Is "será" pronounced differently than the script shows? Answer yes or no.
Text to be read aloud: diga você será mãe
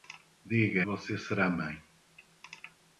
no